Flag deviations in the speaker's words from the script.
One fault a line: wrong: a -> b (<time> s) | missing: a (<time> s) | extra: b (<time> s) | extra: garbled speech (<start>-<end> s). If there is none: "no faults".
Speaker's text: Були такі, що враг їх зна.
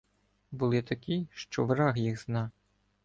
no faults